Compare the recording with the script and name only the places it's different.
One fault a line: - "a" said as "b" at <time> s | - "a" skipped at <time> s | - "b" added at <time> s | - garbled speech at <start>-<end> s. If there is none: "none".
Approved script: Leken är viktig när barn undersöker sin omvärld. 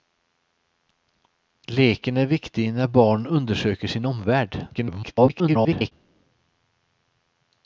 - garbled speech at 4.7-5.9 s